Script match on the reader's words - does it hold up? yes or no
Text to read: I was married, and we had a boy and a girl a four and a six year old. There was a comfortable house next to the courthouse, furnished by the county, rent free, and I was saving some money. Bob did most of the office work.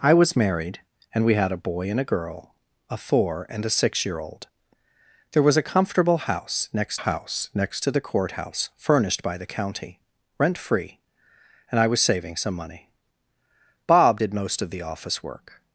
no